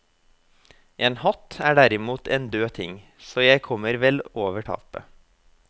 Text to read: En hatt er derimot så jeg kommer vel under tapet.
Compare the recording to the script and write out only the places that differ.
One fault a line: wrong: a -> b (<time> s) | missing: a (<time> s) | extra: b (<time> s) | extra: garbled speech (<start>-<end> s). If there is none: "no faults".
extra: en død ting (2.4 s)
wrong: under -> over (4.4 s)